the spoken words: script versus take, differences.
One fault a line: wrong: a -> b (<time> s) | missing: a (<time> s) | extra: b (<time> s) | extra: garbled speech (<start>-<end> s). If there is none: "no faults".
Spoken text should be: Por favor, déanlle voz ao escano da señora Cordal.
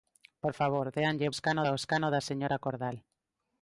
wrong: voz -> escano (1.3 s)